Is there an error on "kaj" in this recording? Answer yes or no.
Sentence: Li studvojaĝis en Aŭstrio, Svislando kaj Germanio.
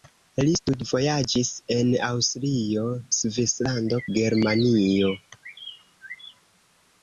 yes